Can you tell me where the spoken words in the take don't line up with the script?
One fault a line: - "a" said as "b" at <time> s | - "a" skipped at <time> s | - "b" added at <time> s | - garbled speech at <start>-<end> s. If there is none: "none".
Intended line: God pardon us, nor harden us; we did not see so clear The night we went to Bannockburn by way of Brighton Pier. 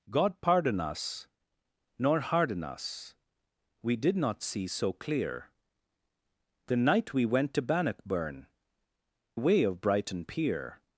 - "by" skipped at 8.5 s